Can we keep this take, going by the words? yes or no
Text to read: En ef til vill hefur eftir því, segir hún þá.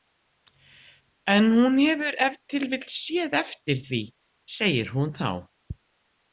no